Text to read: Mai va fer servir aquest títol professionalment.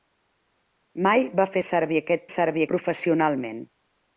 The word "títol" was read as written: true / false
false